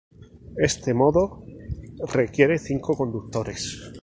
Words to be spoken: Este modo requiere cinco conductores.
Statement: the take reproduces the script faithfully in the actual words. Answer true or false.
true